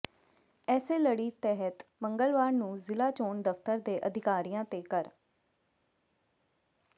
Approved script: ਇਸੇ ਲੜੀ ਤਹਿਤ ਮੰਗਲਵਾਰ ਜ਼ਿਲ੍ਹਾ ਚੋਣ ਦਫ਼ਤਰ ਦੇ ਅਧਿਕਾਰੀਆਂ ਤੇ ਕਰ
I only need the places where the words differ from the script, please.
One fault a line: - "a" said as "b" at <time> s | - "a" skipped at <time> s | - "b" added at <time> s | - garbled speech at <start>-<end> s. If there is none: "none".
- "ਨੂੰ" added at 2.5 s